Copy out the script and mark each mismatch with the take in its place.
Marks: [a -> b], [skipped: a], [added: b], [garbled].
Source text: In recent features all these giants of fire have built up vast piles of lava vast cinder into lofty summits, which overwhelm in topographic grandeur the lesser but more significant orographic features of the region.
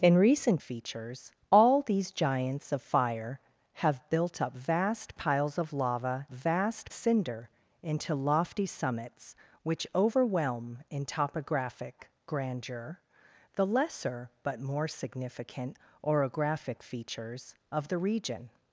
In recent features all these giants of fire have built up vast piles of lava vast cinder into lofty summits, which overwhelm in topographic grandeur the lesser but more significant orographic features of the region.